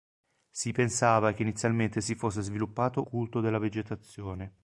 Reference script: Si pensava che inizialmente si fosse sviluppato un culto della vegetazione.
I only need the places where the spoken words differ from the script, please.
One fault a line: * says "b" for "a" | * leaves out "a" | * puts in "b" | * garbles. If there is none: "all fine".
* leaves out "un"